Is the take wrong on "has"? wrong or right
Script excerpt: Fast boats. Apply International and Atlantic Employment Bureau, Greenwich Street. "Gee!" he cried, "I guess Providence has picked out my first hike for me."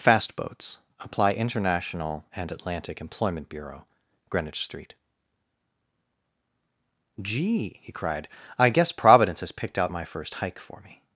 right